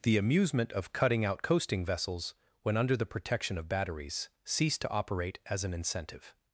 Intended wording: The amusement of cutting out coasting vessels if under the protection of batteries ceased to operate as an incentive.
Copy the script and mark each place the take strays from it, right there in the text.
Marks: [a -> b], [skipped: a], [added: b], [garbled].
The amusement of cutting out coasting vessels [if -> when] under the protection of batteries ceased to operate as an incentive.